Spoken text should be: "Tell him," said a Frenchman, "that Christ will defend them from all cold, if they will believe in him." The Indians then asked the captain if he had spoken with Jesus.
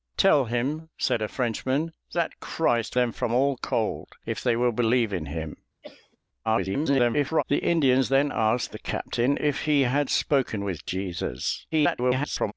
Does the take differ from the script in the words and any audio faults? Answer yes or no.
yes